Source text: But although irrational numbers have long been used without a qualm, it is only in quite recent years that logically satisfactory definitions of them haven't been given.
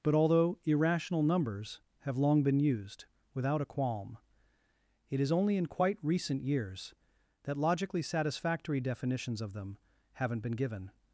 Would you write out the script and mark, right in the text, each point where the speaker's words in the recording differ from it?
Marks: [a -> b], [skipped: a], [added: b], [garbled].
But although irrational numbers have long been used without a qualm, it is only in quite recent years that logically satisfactory definitions of them haven't been given.